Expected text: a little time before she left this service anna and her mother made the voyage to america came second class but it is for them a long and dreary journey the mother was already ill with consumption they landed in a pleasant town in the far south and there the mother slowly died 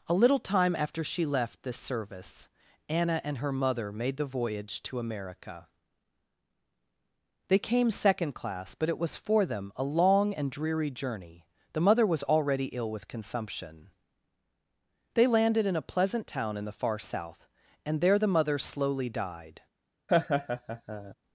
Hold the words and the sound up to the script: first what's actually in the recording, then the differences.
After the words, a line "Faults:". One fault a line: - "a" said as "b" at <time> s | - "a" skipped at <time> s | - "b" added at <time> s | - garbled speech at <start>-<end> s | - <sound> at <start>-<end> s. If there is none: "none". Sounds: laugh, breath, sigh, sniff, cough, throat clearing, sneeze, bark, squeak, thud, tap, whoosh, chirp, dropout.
a little time after she left this service anna and her mother made the voyage to america they came second class but it was for them a long and dreary journey the mother was already ill with consumption they landed in a pleasant town in the far south and there the mother slowly died
Faults:
- "before" said as "after" at 0.8 s
- "they" added at 7.5 s
- "is" said as "was" at 9.0 s
- laugh at 20.1-21.1 s